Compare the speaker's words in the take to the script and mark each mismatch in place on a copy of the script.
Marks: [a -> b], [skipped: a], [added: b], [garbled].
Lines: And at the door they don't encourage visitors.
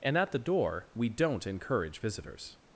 And at the door [they -> we] don't encourage visitors.